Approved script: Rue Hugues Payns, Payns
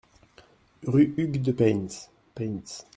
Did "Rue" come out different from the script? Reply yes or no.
no